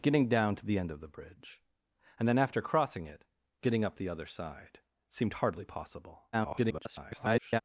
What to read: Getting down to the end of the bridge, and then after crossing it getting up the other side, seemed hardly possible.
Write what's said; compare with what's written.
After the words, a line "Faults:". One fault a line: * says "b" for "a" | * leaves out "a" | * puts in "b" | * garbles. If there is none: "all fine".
Getting down to the end of the bridge, and then after crossing it getting up the other side, seemed hardly possible. [garbled]
Faults:
* garbles